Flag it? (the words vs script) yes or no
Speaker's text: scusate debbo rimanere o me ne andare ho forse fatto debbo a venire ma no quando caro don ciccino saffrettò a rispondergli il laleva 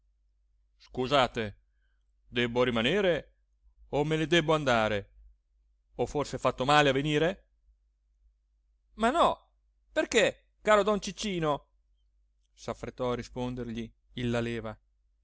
yes